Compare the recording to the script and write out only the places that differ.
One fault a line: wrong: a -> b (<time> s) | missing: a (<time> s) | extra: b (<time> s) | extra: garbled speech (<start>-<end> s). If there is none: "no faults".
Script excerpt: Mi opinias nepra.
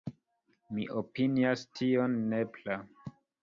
extra: tion (1.8 s)